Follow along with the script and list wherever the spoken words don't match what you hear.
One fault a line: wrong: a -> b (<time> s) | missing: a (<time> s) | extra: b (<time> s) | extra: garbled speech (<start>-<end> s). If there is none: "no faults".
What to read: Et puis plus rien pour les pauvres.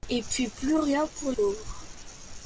missing: les (1.3 s)